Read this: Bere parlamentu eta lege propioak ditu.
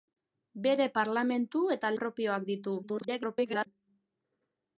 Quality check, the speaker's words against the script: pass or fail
fail